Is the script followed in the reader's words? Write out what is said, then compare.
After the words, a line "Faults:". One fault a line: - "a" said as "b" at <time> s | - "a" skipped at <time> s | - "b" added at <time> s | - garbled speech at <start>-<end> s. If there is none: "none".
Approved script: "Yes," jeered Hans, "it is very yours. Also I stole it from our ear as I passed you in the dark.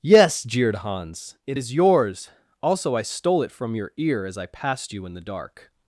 "Yes," jeered Hans, "it is yours. Also I stole it from your ear as I passed you in the dark.
Faults:
- "very" skipped at 1.7 s
- "our" said as "your" at 3.7 s